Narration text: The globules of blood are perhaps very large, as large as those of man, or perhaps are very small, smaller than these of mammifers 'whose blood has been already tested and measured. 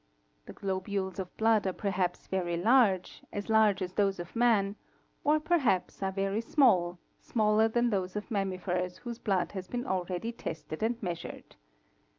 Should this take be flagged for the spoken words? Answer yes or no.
yes